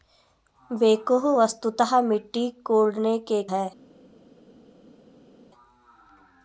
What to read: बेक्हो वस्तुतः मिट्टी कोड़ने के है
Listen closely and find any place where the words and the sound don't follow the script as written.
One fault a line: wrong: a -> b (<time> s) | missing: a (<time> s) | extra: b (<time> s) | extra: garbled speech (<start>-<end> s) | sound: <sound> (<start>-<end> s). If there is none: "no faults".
no faults